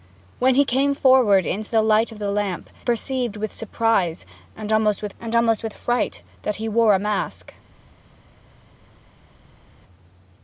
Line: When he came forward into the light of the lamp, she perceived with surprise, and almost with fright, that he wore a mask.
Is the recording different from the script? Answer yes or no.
yes